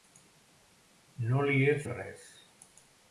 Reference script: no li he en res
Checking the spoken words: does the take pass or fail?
pass